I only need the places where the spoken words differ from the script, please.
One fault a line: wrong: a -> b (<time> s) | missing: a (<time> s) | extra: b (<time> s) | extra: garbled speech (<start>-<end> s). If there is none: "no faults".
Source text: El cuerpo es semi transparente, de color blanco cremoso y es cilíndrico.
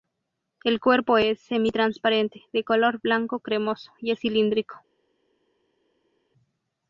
no faults